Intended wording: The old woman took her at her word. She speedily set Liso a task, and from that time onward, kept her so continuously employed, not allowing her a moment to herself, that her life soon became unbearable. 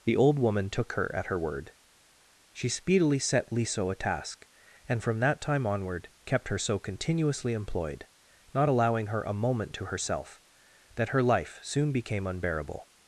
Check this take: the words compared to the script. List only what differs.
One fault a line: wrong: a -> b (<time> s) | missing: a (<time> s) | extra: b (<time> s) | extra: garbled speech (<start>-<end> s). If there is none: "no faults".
no faults